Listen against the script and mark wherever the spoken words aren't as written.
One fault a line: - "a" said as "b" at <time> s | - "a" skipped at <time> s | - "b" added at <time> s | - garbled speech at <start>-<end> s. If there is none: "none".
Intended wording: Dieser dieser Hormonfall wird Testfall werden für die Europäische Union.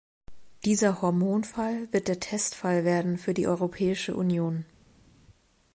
- "dieser" skipped at 1.0 s
- "der" added at 2.1 s